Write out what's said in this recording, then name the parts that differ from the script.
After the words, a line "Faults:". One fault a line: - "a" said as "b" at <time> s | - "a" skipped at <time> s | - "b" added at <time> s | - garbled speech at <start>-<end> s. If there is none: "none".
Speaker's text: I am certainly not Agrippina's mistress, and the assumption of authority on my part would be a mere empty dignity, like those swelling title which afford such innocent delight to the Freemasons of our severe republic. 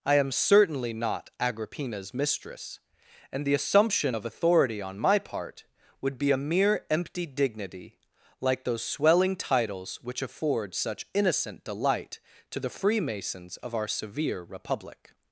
I am certainly not Agrippina's mistress, and the assumption of authority on my part would be a mere empty dignity, like those swelling titles which afford such innocent delight to the Freemasons of our severe republic.
Faults:
- "title" said as "titles" at 9.3 s